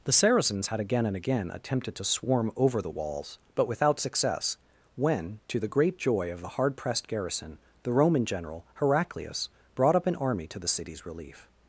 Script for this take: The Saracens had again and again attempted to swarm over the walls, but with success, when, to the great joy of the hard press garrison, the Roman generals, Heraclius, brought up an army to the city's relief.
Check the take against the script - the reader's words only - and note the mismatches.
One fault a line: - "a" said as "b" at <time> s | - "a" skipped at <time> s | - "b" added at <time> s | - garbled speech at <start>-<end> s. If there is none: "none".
- "with" said as "without" at 3.7 s
- "press" said as "pressed" at 6.8 s
- "generals" said as "general" at 8.2 s